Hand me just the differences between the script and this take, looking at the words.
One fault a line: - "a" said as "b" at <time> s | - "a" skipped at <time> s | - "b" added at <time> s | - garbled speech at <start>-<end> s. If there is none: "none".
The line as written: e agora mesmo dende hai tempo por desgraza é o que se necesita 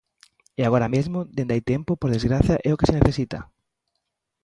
none